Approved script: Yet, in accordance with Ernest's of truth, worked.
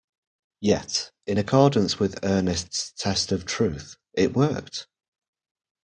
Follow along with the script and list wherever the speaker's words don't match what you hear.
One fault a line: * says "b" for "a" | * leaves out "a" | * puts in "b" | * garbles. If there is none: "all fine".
* puts in "test"
* puts in "it"